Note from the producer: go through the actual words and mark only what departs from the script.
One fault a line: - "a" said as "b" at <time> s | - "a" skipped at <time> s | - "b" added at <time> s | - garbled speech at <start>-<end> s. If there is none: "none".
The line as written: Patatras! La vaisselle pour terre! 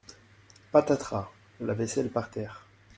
- "pour" said as "par" at 2.1 s